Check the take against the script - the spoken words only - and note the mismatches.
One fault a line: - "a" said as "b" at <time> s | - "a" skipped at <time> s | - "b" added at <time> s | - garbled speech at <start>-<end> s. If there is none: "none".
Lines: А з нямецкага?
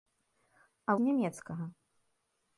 none